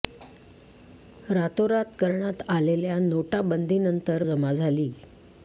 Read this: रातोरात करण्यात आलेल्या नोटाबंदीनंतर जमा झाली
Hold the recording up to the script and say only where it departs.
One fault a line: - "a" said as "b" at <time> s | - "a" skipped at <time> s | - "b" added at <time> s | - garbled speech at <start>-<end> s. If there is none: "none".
none